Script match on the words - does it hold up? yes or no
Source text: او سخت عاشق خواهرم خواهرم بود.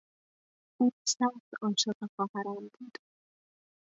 no